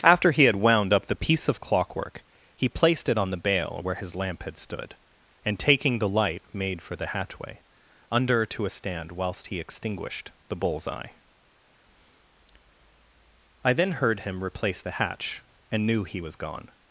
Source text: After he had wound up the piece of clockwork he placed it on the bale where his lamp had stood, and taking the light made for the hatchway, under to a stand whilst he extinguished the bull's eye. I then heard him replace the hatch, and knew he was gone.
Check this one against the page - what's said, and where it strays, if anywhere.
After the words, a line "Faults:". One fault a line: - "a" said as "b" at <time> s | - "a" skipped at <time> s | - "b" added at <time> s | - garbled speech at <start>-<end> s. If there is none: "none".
After he had wound up the piece of clockwork he placed it on the bale where his lamp had stood, and taking the light made for the hatchway, under to a stand whilst he extinguished the bull's eye. I then heard him replace the hatch, and knew he was gone.
Faults:
none